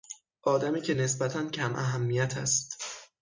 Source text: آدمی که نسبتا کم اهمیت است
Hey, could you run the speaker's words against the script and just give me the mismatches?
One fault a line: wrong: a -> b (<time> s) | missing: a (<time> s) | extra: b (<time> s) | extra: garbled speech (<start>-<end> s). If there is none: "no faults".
no faults